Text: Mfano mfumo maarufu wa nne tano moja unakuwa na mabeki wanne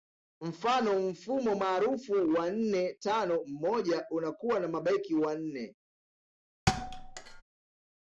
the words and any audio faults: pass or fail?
fail